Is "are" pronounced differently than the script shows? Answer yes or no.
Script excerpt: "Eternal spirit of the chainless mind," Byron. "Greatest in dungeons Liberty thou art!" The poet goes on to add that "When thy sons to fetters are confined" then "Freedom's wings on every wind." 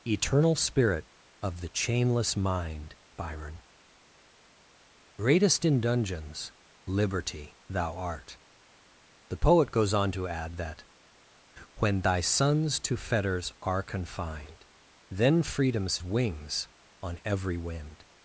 no